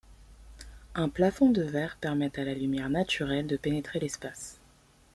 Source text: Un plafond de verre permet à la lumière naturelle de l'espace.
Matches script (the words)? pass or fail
fail